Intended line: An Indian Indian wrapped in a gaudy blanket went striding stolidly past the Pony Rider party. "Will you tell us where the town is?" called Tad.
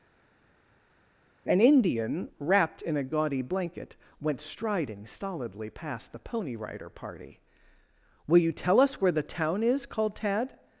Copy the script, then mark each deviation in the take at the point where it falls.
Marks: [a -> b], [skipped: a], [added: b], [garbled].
An Indian [skipped: Indian] wrapped in a gaudy blanket went striding stolidly past the Pony Rider party. "Will you tell us where the town is?" called Tad.